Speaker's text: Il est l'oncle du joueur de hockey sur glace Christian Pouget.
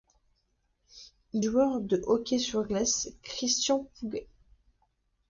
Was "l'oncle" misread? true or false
true